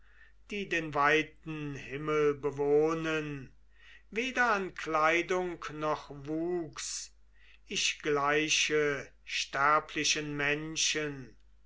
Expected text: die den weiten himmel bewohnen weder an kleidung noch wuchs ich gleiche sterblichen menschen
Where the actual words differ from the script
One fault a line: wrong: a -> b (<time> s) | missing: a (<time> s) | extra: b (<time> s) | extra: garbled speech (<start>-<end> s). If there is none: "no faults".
no faults